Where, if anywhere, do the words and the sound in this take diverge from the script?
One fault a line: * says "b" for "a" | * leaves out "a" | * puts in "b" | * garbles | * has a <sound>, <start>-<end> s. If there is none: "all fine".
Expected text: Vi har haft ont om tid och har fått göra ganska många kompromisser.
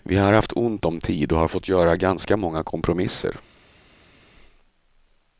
all fine